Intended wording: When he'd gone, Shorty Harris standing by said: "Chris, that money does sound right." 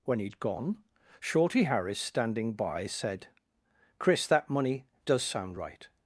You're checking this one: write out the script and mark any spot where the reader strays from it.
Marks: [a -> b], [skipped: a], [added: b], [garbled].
When he'd gone, Shorty Harris standing by said: "Chris, that money does sound right."